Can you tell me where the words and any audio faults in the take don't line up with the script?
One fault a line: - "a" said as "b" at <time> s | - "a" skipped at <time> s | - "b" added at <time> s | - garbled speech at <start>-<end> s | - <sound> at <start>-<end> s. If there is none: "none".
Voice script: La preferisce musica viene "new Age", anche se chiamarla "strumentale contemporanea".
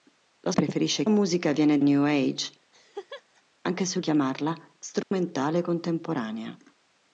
- laugh at 2.7-3.4 s
- dropout at 5.0-5.1 s